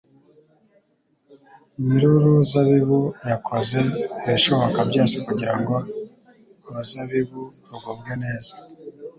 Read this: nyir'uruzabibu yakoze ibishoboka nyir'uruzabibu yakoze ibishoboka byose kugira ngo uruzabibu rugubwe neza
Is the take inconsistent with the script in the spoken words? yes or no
yes